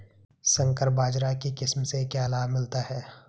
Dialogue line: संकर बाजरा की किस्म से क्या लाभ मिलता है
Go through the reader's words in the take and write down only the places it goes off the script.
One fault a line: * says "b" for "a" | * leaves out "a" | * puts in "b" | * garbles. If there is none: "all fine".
all fine